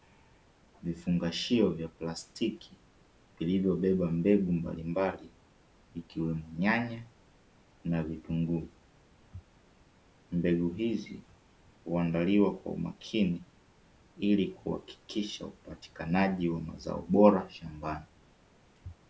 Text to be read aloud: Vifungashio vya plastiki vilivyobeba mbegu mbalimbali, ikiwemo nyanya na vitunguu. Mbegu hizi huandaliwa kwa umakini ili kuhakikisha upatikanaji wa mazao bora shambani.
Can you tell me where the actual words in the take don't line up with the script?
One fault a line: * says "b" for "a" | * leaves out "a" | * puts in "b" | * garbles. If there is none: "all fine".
all fine